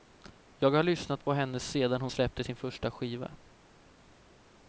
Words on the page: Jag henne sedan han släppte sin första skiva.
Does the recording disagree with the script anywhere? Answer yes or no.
yes